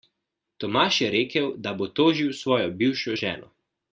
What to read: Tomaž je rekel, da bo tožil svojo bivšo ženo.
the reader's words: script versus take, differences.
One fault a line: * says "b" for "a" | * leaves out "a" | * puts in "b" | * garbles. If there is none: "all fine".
all fine